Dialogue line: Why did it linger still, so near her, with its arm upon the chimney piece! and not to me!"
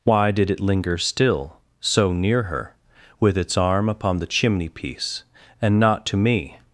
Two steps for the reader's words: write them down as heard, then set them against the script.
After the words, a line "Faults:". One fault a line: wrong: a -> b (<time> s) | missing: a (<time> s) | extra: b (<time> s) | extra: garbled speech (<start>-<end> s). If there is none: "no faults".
Why did it linger still, so near her, with its arm upon the chimney piece! and not to me!"
Faults:
no faults